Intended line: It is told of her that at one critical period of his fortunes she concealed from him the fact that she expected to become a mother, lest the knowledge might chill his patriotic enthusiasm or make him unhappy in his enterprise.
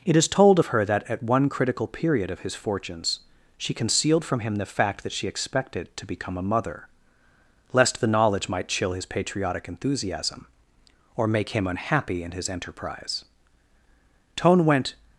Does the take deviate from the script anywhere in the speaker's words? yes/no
yes